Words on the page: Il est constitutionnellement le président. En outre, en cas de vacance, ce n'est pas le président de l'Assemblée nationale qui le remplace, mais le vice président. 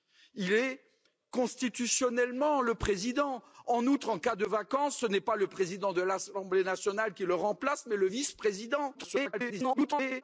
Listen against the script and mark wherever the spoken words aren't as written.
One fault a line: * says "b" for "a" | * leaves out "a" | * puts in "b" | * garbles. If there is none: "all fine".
* garbles